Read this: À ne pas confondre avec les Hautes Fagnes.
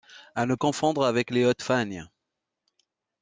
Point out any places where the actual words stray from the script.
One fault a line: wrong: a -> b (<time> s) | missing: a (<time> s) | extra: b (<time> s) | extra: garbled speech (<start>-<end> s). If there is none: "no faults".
missing: pas (0.6 s)